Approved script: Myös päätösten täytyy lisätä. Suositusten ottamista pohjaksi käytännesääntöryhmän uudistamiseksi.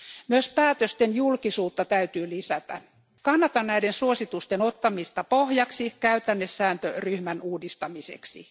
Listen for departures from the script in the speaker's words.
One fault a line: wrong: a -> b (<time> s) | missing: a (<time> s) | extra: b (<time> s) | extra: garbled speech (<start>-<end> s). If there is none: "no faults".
extra: julkisuutta (1.1 s)
extra: Kannatan näiden (3.2 s)